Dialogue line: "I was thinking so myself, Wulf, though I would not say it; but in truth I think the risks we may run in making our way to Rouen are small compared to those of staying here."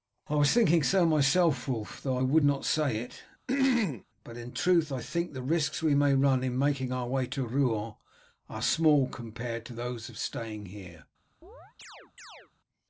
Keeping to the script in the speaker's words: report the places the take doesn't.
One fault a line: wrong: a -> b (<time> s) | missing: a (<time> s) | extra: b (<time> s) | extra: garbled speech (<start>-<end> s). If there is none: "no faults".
no faults